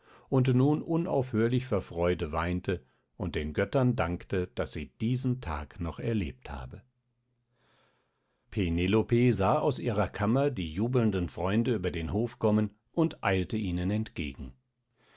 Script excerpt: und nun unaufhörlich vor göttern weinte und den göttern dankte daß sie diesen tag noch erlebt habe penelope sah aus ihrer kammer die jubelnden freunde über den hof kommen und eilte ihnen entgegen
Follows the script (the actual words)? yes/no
no